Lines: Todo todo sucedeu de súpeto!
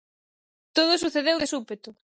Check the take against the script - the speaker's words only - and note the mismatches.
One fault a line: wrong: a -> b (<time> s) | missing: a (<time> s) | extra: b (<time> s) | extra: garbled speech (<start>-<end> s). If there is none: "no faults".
missing: todo (1.0 s)